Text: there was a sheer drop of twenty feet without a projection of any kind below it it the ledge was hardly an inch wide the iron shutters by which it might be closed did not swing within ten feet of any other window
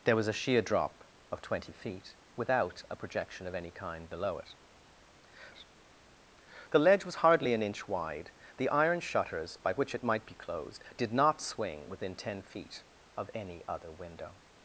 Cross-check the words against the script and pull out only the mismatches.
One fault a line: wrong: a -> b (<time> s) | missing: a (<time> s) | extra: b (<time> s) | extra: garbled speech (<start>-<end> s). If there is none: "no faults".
no faults